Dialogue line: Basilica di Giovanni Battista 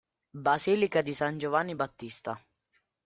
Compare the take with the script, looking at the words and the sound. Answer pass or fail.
fail